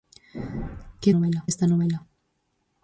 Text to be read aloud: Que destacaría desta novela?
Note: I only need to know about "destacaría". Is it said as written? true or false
false